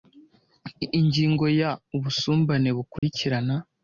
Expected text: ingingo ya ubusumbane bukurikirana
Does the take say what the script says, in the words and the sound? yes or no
no